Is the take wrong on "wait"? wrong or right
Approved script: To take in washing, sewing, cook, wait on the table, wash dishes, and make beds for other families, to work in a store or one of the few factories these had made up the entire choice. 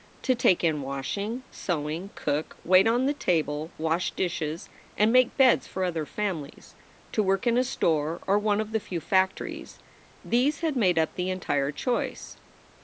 right